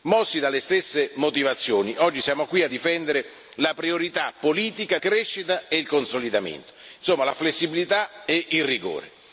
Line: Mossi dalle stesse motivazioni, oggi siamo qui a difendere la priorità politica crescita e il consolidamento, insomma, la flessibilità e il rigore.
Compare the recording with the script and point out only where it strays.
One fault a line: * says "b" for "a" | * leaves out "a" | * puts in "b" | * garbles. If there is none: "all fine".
all fine